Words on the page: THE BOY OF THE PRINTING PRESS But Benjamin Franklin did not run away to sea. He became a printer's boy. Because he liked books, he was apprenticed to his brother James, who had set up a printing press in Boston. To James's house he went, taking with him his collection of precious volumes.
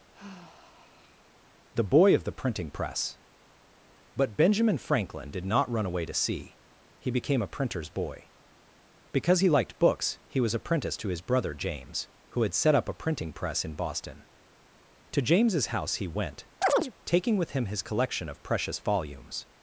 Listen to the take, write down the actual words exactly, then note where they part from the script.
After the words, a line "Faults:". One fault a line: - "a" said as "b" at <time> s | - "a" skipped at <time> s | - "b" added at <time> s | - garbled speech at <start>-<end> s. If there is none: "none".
THE BOY OF THE PRINTING PRESS But Benjamin Franklin did not run away to sea. He became a printer's boy. Because he liked books, he was apprenticed to his brother James, who had set up a printing press in Boston. To James's house he went, taking with him his collection of precious volumes.
Faults:
none